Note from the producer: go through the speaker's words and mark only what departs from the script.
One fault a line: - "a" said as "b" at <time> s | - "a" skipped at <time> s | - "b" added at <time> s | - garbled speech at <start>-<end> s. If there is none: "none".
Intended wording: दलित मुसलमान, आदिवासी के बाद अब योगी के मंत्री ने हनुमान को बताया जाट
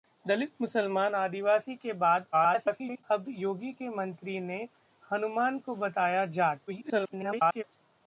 - garbled speech at 2.3-3.0 s
- garbled speech at 6.7-7.6 s